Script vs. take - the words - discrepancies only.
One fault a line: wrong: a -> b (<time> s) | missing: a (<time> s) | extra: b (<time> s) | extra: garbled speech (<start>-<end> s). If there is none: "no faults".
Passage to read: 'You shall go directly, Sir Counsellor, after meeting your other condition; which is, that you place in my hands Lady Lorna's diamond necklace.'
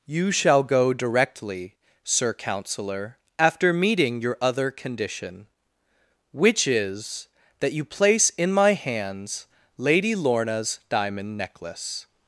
no faults